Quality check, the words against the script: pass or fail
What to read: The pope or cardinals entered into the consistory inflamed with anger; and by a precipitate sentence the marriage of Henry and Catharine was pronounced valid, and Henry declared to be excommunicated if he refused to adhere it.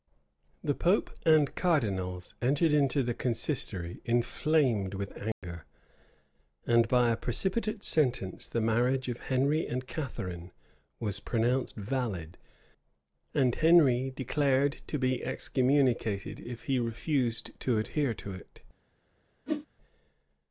fail